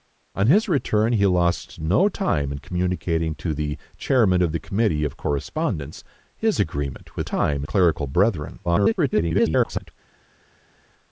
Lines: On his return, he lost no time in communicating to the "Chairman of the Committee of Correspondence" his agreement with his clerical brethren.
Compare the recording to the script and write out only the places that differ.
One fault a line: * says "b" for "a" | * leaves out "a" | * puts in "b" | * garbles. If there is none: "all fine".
* says "time" for "his"
* garbles